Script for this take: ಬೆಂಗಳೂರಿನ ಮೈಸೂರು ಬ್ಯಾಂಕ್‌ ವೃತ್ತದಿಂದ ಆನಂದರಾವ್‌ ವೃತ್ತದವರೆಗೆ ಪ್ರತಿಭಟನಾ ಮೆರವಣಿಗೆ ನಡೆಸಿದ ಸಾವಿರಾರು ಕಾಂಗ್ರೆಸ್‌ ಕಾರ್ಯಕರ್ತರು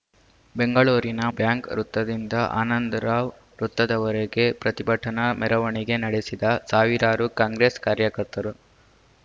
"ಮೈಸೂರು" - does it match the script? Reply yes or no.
no